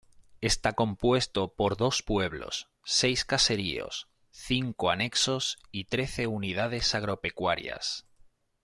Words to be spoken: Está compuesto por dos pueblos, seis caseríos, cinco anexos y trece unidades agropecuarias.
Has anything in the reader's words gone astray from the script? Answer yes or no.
no